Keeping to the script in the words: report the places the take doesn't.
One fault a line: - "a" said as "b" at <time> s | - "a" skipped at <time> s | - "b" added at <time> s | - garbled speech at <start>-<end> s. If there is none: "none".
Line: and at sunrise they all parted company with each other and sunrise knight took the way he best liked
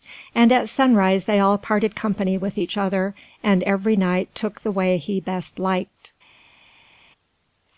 - "sunrise" said as "every" at 3.6 s